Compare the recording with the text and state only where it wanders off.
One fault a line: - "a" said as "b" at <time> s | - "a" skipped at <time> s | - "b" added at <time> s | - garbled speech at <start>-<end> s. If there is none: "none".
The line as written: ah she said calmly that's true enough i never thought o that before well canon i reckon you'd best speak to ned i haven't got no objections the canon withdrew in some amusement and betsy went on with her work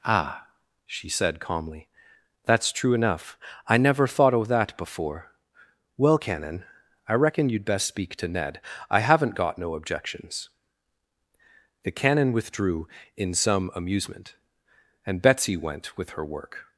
- "on" skipped at 16.0 s